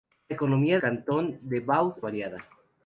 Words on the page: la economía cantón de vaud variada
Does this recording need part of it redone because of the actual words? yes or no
no